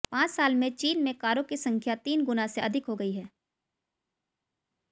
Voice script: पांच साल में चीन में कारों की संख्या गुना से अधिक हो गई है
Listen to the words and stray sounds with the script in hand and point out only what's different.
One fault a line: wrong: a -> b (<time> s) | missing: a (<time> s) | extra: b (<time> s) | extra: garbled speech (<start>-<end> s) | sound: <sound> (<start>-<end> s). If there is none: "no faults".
extra: तीन (2.0 s)